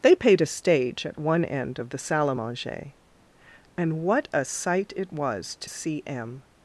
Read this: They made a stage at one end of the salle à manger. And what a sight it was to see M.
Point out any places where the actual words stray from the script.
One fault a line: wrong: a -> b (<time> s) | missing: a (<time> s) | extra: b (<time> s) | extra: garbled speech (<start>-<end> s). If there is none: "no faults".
wrong: made -> paid (0.1 s)